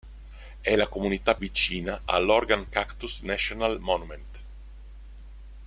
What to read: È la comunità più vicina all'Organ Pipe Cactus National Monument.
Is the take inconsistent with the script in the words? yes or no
yes